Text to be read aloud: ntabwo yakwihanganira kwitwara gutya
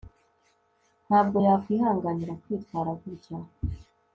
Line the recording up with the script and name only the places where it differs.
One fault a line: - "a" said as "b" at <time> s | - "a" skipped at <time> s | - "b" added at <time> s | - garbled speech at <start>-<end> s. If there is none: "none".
none